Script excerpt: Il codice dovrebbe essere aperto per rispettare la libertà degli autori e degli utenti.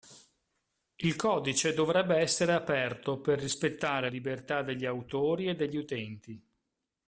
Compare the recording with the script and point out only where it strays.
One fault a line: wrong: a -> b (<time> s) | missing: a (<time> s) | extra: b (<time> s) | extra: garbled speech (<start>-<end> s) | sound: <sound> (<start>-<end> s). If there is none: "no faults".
missing: la (4.1 s)